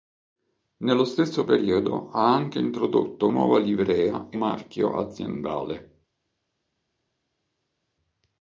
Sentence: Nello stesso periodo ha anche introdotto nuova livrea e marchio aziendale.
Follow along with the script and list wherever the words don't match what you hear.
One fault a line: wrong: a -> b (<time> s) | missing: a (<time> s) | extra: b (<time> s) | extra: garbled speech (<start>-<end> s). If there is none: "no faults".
no faults